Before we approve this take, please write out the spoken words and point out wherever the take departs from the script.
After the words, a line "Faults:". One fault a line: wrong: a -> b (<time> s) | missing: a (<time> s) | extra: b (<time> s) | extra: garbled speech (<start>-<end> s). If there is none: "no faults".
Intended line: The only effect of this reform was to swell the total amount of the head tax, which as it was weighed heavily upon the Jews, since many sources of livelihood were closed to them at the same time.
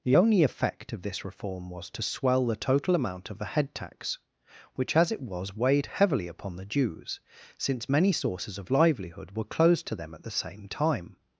The only effect of this reform was to swell the total amount of the head tax, which as it was weighed heavily upon the Jews, since many sources of livelihood were closed to them at the same time.
Faults:
no faults